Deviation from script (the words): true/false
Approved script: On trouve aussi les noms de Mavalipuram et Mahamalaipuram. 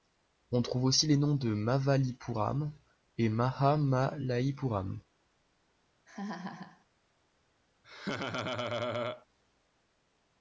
false